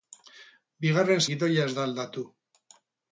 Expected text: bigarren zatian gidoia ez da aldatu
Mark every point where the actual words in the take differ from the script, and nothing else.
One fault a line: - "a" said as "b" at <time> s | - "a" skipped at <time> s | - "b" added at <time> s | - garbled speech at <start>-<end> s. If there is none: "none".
- "zatian" skipped at 1.2 s